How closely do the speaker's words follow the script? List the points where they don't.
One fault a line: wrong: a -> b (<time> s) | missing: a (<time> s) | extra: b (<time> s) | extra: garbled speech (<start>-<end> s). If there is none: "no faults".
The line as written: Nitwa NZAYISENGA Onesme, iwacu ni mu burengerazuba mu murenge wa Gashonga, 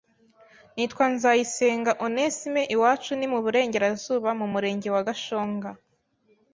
no faults